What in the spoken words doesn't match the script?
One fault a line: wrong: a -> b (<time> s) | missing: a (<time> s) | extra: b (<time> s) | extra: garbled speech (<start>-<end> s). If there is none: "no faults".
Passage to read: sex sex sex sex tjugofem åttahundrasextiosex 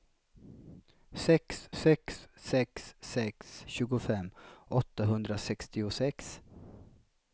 no faults